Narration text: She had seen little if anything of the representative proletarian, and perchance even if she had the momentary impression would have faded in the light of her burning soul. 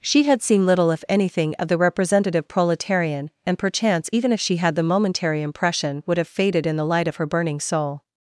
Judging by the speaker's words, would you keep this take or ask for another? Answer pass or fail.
pass